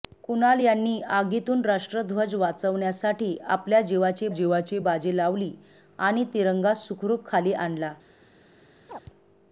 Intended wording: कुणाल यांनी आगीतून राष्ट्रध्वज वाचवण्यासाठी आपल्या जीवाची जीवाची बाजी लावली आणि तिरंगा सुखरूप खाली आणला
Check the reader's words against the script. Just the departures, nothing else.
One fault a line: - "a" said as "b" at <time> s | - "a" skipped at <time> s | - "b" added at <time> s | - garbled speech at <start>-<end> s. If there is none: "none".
none